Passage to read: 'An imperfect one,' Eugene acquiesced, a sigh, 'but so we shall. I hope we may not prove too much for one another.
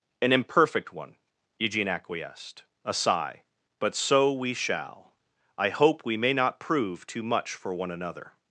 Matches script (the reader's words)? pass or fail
pass